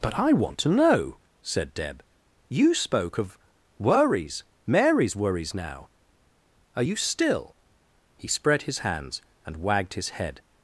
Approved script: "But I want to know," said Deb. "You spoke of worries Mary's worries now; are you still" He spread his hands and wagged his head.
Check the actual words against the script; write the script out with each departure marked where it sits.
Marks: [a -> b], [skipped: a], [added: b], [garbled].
"But I want to know," said Deb. "You spoke of worries Mary's worries now; are you still" He spread his hands and wagged his head.